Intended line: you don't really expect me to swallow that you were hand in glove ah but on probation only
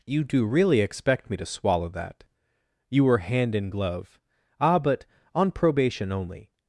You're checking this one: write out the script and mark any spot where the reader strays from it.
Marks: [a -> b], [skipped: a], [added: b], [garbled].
you [don't -> do] really expect me to swallow that you were hand in glove ah but on probation only